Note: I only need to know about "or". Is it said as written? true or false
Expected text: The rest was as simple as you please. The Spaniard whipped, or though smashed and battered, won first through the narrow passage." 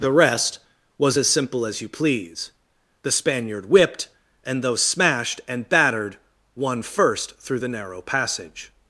false